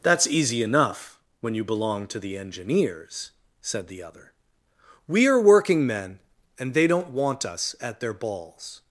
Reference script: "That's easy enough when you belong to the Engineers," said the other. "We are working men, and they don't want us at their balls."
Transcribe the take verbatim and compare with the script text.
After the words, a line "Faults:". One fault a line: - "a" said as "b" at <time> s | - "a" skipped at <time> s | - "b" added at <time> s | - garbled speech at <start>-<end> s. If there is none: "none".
"That's easy enough when you belong to the Engineers," said the other. "We are working men, and they don't want us at their balls."
Faults:
none